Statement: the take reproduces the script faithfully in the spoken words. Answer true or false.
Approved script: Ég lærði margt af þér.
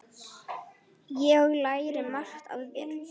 true